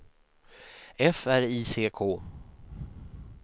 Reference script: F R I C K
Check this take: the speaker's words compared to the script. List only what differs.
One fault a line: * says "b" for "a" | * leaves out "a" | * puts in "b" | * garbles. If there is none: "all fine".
all fine